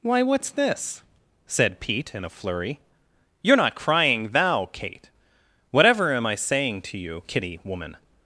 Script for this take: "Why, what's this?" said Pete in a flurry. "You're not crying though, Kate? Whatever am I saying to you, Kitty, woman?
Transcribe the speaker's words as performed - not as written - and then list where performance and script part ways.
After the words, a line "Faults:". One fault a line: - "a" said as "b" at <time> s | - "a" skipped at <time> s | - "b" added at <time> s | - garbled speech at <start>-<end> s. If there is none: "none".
"Why, what's this?" said Pete in a flurry. "You're not crying thou, Kate? Whatever am I saying to you, Kitty, woman?
Faults:
- "though" said as "thou" at 4.3 s